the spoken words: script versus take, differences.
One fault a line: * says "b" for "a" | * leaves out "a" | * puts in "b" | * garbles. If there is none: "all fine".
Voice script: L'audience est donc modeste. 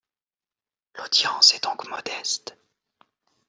all fine